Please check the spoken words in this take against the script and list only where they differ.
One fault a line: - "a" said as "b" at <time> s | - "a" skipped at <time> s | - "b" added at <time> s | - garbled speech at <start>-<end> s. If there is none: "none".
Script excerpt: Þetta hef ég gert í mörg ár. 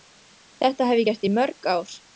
none